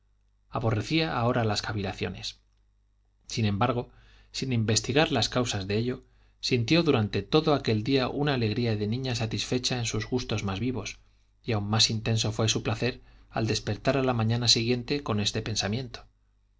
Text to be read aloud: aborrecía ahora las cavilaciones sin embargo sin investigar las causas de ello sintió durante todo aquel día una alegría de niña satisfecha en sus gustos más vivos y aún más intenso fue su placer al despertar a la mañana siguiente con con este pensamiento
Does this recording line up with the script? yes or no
no